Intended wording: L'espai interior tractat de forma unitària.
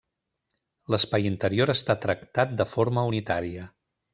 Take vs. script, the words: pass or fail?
fail